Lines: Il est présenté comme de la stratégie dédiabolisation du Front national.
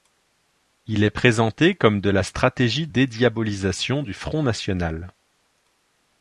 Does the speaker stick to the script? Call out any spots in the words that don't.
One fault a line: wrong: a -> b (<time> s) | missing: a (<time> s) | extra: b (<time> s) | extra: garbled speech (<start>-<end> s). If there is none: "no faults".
no faults